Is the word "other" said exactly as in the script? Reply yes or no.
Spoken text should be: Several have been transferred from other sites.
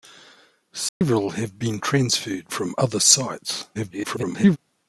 yes